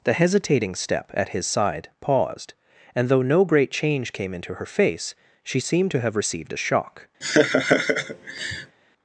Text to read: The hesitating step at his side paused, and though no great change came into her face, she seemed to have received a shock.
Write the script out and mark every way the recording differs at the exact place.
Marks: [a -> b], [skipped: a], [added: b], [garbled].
The hesitating step at his side paused, and though no great change came into her face, she seemed to have received a shock.